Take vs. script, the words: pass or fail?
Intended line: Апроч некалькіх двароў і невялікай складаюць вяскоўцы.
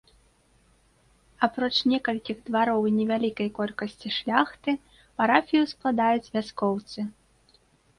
fail